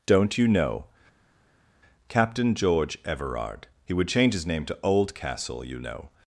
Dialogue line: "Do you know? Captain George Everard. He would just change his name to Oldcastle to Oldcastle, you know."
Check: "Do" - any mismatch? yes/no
yes